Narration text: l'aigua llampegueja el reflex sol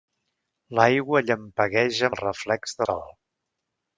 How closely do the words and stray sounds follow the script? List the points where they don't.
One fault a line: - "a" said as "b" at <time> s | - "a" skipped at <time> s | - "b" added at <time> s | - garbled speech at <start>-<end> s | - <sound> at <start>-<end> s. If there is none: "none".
none